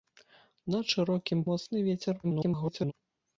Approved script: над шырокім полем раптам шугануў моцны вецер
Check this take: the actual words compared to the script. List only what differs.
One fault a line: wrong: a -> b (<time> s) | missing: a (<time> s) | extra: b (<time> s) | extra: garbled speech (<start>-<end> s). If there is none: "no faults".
missing: полем раптам шугануў (1.4 s)
extra: garbled speech (2.2-2.9 s)